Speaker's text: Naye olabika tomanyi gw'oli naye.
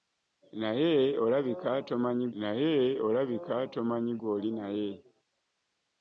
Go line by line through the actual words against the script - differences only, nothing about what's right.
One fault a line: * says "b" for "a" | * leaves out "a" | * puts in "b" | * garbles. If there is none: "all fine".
* puts in "naye olabika tomanyi"